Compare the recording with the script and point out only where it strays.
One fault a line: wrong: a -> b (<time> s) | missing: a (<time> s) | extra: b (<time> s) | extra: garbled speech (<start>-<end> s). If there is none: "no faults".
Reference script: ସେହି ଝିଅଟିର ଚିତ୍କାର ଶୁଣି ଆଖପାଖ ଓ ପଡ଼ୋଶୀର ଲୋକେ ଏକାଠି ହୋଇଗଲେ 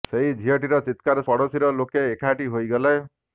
missing: ଶୁଣି ଆଖପାଖ ଓ (1.3 s)